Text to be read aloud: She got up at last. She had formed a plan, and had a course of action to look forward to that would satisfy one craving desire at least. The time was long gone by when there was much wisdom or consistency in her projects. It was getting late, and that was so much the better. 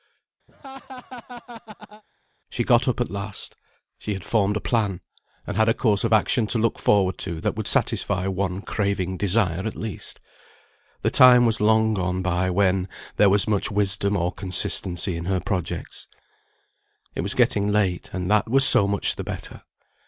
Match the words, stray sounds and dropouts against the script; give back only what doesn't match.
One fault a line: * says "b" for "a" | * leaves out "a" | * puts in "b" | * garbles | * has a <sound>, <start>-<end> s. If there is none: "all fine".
* has a laugh, 0.5-2.0 s